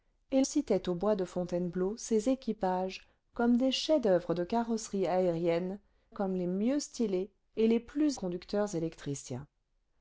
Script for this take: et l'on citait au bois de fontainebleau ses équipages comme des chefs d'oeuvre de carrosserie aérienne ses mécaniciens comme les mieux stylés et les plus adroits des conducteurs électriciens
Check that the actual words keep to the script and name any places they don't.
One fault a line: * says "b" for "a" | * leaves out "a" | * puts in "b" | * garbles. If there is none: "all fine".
* leaves out "l'on"
* leaves out "ses mécaniciens"
* leaves out "adroits des"